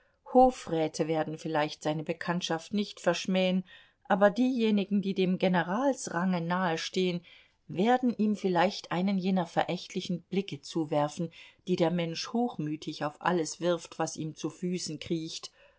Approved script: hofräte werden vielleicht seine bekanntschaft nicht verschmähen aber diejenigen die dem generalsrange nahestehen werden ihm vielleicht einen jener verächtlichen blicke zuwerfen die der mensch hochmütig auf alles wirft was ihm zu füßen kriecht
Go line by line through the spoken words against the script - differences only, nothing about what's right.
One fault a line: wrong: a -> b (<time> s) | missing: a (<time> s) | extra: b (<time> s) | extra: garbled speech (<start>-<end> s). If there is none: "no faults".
no faults